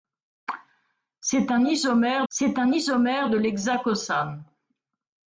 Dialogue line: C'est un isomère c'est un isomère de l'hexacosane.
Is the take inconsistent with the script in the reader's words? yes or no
no